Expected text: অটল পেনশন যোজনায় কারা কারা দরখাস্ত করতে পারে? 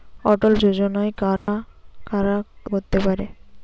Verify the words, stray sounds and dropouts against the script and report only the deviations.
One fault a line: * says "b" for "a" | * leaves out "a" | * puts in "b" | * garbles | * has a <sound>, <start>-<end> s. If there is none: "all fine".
* leaves out "পেনশন"
* has a dropout, 1.4-1.5 s
* leaves out "দরখাস্ত"